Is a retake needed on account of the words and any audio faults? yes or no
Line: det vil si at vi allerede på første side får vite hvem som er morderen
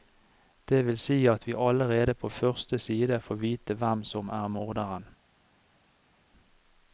no